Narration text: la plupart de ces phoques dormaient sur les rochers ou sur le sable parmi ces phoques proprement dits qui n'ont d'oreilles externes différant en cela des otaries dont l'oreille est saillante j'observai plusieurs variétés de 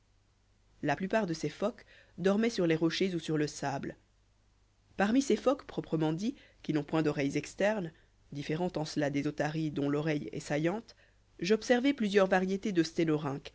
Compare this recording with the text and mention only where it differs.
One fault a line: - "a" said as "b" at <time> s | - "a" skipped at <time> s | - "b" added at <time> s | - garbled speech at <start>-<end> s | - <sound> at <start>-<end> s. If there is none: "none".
- "point" added at 6.8 s